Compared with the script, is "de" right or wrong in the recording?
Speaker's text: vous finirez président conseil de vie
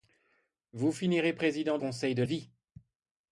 right